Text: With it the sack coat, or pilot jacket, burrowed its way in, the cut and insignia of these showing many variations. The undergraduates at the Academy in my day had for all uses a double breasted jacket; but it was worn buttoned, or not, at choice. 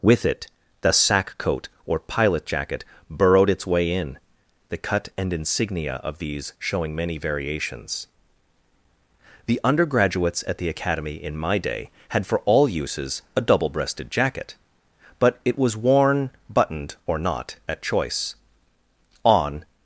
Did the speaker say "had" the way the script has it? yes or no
yes